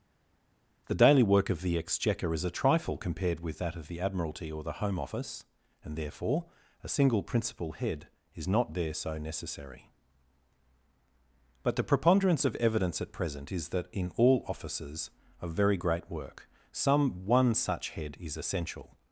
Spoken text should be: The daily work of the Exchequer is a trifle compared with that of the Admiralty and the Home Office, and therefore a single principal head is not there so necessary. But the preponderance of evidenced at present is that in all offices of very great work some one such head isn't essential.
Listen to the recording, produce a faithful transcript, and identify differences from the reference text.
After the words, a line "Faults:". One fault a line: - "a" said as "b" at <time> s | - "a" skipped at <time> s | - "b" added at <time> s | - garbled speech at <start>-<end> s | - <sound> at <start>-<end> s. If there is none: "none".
The daily work of the Exchequer is a trifle compared with that of the Admiralty or the Home Office, and therefore a single principal head is not there so necessary. But the preponderance of evidence at present is that in all offices of very great work some one such head is essential.
Faults:
- "and" said as "or" at 4.5 s
- "evidenced" said as "evidence" at 12.6 s
- "isn't" said as "is" at 18.2 s